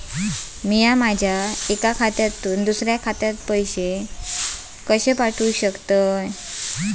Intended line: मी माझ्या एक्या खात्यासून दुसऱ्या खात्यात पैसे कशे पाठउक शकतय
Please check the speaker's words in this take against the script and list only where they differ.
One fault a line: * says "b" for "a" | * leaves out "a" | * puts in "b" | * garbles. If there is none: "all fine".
all fine